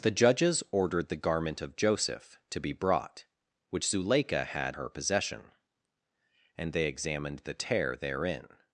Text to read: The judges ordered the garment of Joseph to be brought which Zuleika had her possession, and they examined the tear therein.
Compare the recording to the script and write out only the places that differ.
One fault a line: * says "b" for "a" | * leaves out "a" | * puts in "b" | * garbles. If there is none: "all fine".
all fine